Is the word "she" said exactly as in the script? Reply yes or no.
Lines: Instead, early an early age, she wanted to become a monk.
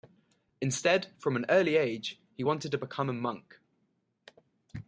no